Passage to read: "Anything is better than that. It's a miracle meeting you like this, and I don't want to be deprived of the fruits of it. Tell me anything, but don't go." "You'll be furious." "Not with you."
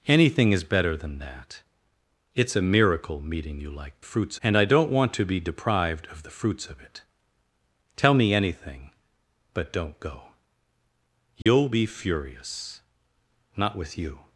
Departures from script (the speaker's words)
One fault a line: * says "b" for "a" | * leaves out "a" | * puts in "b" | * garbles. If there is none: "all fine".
* says "fruits" for "this"